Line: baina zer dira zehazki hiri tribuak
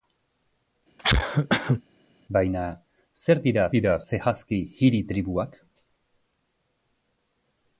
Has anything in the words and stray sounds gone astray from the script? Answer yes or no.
yes